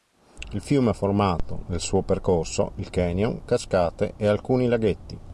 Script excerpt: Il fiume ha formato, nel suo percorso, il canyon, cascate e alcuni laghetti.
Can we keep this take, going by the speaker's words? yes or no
yes